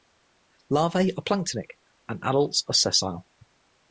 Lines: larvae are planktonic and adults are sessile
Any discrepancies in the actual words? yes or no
no